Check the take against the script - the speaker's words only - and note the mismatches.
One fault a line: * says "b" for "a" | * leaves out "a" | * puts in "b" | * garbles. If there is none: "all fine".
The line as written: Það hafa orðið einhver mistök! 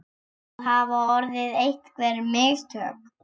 all fine